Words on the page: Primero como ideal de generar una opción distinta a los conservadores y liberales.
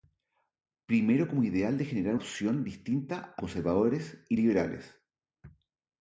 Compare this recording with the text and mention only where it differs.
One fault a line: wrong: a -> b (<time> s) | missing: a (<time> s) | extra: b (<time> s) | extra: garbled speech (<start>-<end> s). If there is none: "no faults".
missing: una (2.1 s)
missing: los (3.4 s)